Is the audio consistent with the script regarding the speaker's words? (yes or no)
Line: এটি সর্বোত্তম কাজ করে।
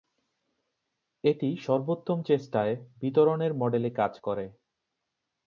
no